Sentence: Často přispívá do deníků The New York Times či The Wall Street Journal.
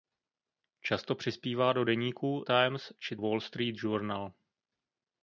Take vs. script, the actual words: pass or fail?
fail